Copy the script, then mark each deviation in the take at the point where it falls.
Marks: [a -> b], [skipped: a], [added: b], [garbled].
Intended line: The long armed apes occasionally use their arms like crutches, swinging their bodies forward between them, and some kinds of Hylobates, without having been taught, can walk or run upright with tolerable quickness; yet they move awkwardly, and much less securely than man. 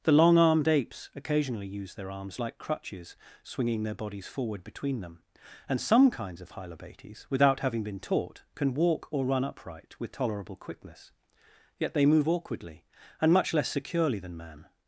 The long armed apes occasionally use their arms like crutches, swinging their bodies forward between them, and some kinds of Hylobates, without having been taught, can walk or run upright with tolerable quickness; yet they move awkwardly, and much less securely than man.